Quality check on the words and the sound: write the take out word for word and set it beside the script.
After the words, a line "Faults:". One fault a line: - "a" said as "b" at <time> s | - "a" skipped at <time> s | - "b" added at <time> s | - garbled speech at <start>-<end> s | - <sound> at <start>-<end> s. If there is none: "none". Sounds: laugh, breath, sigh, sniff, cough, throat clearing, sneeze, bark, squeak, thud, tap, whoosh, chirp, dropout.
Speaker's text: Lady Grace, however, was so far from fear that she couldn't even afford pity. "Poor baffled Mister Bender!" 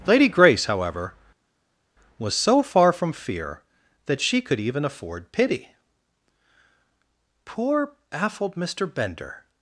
Lady Grace, however, was so far from fear that she could even afford pity. "Poor baffled Mister Bender!"
Faults:
- "couldn't" said as "could" at 4.4 s